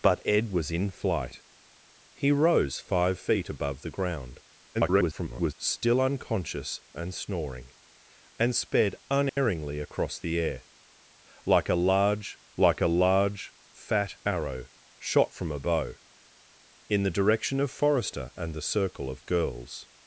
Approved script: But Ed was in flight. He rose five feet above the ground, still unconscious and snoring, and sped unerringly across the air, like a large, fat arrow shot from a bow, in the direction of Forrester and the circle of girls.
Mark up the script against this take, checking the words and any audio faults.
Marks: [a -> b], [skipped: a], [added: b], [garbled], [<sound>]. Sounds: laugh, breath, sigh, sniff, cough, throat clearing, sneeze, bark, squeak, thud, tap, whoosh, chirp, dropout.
But Ed was in flight. He rose five feet above the ground, [garbled] still unconscious and snoring, and sped unerringly [dropout] across the air, like a large, [added: like a large] fat arrow shot from a bow, in the direction of Forrester and the circle of girls.